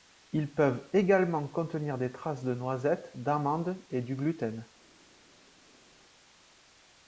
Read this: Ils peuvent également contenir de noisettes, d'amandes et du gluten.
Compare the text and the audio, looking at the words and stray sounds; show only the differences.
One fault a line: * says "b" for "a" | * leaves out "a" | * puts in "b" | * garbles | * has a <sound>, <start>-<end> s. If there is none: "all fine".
* puts in "des traces"